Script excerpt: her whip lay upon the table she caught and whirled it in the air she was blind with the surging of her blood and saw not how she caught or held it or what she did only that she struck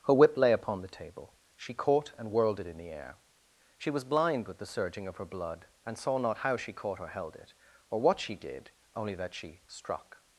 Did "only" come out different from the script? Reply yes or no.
no